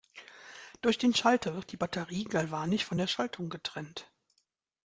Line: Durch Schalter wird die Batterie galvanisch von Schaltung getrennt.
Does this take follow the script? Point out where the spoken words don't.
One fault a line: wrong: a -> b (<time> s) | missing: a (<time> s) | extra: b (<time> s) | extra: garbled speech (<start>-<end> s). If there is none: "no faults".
extra: den (1.0 s)
extra: der (3.0 s)